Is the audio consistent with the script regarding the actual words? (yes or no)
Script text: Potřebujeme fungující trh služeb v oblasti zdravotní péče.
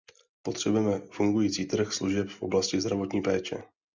yes